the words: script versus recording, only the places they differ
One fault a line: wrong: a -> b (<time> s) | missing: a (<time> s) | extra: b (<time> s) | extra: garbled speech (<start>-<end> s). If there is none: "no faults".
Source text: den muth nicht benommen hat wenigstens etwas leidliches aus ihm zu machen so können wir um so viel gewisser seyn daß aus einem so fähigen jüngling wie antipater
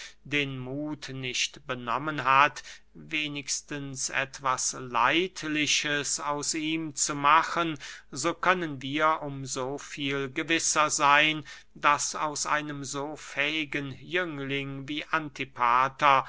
no faults